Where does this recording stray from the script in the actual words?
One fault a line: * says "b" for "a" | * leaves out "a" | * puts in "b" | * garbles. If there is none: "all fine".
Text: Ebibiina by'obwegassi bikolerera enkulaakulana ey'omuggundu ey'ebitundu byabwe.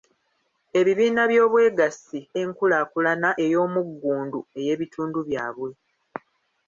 * leaves out "bikolerera"